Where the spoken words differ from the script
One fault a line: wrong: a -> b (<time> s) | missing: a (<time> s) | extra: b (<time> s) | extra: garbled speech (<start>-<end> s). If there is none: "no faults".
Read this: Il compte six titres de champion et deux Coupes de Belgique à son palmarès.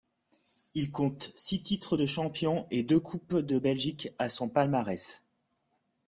no faults